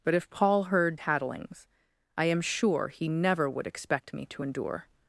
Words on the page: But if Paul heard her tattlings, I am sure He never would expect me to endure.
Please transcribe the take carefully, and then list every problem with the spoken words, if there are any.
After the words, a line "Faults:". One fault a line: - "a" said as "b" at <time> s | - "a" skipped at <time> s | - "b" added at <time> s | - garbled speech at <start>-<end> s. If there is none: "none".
But if Paul heard tattlings, I am sure He never would expect me to endure.
Faults:
- "her" skipped at 1.0 s